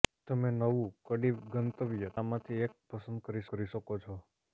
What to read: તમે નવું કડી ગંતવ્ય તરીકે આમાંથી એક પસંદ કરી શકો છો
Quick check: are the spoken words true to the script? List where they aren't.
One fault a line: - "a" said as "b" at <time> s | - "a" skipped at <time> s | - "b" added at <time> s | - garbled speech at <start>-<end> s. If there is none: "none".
- "તરીકે" skipped at 2.1 s
- "કરી" added at 3.5 s